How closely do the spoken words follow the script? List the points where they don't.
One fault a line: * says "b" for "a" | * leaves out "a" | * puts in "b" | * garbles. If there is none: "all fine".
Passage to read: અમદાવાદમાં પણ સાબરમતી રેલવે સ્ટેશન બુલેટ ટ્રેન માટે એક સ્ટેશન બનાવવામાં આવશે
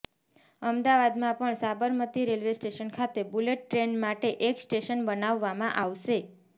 * puts in "ખાતે"